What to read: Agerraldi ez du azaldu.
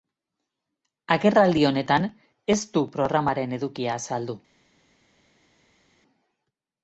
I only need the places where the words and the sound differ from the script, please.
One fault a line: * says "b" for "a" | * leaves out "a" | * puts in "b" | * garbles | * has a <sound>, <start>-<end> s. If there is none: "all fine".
* puts in "honetan"
* puts in "programaren edukia"